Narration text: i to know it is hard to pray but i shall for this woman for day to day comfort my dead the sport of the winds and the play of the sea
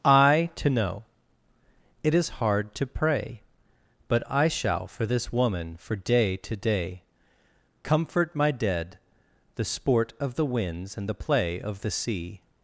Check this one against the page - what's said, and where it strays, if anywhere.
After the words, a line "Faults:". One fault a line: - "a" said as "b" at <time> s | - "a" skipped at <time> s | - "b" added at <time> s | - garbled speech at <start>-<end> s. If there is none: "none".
i to know it is hard to pray but i shall for this woman for day to day comfort my dead the sport of the winds and the play of the sea
Faults:
none